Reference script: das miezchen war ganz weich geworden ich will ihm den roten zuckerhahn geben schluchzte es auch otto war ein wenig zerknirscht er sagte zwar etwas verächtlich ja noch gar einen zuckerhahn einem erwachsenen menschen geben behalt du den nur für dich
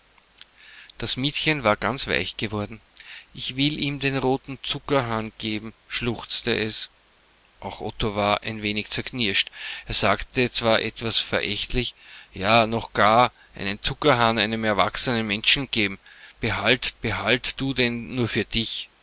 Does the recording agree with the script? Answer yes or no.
no